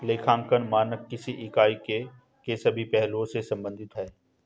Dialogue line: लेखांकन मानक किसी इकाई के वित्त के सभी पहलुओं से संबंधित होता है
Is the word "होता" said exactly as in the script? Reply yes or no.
no